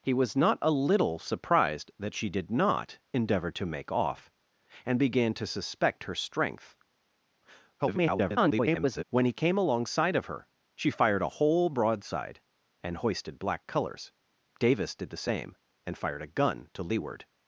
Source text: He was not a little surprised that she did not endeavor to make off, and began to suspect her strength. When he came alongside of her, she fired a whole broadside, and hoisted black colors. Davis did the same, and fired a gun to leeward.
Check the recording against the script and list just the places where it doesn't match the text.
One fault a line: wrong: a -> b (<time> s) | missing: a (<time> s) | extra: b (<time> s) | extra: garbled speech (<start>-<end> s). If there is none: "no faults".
extra: garbled speech (7.8-9.0 s)